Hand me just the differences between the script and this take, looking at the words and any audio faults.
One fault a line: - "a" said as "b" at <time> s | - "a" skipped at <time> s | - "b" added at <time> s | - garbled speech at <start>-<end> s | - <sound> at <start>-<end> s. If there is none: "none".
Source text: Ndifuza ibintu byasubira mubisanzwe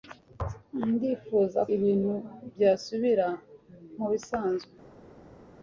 none